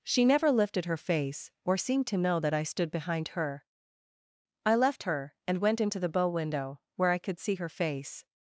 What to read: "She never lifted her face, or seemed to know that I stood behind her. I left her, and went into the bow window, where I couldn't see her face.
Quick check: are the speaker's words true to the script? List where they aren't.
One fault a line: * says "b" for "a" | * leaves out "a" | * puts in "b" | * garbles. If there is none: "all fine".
* says "could" for "couldn't"